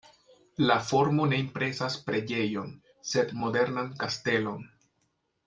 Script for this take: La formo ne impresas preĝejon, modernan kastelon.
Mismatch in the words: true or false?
true